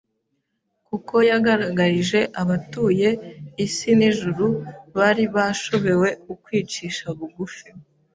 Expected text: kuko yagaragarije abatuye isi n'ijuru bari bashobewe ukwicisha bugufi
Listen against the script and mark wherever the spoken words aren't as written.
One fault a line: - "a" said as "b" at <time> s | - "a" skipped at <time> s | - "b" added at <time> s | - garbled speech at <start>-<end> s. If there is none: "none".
none